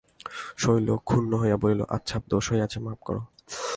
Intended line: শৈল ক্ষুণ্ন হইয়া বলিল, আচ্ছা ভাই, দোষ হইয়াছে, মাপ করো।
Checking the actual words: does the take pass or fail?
fail